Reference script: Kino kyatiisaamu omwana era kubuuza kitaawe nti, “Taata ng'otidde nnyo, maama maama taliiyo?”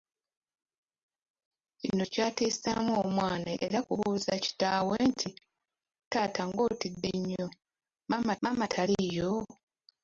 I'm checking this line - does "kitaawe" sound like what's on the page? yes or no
yes